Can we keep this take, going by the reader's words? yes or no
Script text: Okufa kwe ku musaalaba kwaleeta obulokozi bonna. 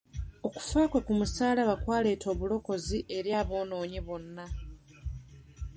no